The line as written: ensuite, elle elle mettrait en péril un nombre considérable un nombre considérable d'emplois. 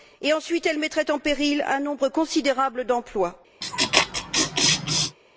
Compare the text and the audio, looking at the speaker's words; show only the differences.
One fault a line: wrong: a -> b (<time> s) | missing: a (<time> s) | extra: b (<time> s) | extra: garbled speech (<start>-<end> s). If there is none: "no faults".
missing: elle (0.8 s)
missing: un nombre considérable (2.9 s)